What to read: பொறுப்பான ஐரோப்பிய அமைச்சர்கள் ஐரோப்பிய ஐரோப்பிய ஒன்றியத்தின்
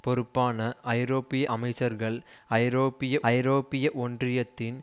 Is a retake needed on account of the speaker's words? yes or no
no